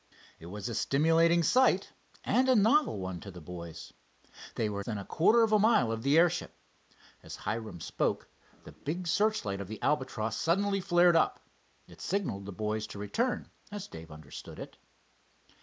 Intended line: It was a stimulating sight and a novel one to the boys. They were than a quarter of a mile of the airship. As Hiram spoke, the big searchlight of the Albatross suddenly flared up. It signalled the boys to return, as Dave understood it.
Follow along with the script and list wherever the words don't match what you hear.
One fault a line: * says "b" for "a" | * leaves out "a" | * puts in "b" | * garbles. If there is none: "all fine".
all fine